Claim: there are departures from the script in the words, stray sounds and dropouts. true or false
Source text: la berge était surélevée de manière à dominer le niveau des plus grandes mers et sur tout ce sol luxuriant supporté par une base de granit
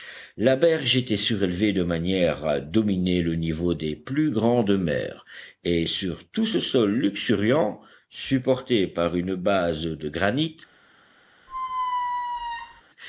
true